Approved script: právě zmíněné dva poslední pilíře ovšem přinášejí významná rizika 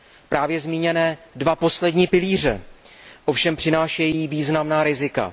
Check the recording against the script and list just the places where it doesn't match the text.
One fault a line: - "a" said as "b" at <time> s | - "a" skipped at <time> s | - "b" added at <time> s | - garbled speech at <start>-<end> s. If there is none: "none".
none